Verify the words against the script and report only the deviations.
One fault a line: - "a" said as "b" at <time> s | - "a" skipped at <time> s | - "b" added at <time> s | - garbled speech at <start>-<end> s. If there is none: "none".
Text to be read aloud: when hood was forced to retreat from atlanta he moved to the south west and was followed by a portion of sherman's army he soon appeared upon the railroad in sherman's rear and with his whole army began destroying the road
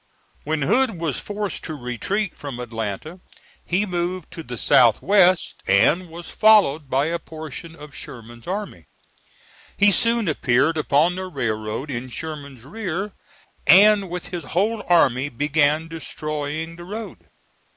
none